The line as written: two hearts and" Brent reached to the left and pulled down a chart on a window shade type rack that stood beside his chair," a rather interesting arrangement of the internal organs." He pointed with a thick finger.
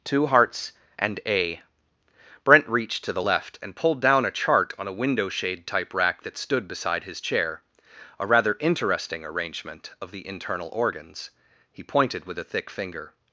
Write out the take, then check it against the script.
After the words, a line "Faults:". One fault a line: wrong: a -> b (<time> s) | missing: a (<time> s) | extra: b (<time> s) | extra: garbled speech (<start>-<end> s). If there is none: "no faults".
two hearts and" a Brent reached to the left and pulled down a chart on a window shade type rack that stood beside his chair," a rather interesting arrangement of the internal organs." He pointed with a thick finger.
Faults:
extra: a (1.2 s)